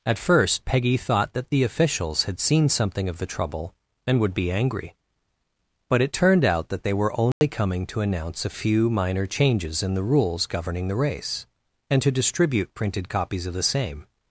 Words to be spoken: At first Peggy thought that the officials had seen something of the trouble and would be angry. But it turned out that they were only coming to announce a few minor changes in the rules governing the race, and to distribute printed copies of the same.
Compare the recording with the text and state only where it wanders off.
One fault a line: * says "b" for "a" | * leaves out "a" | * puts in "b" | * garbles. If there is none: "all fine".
all fine